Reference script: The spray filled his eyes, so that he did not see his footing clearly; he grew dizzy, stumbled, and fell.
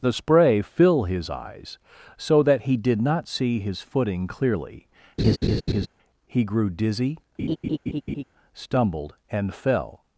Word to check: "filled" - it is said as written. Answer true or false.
false